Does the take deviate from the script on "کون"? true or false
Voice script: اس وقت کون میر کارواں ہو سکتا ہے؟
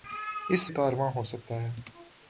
true